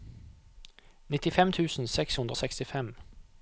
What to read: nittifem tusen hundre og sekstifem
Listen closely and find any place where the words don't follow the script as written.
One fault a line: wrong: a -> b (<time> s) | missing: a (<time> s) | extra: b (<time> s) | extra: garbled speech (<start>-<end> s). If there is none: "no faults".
extra: seks (1.9 s)